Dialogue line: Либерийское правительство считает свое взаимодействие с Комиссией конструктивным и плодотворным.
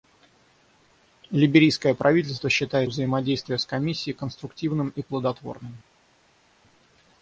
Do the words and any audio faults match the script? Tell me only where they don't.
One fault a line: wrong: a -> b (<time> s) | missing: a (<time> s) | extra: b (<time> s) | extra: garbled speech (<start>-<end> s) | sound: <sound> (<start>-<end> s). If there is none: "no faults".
missing: свое (2.9 s)